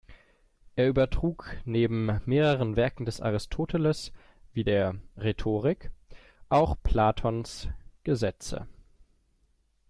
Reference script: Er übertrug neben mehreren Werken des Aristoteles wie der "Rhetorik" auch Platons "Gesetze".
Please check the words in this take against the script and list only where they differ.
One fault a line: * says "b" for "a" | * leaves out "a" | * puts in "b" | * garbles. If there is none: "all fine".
all fine